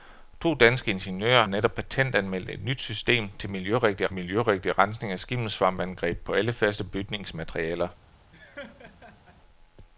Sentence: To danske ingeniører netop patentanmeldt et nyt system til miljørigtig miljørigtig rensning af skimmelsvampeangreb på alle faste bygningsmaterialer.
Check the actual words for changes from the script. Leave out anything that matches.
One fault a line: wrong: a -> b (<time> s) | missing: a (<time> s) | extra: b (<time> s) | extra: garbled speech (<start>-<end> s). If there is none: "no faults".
no faults